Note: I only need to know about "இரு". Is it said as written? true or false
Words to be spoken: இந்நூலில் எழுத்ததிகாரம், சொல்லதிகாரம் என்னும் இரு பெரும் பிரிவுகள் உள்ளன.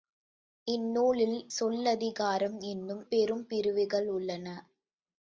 false